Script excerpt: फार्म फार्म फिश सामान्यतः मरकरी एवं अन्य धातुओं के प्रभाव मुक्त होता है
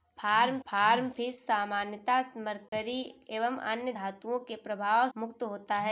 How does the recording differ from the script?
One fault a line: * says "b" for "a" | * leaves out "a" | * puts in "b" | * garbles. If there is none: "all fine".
all fine